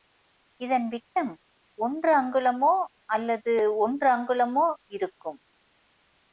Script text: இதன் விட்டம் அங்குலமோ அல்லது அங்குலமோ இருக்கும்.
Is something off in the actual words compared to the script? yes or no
yes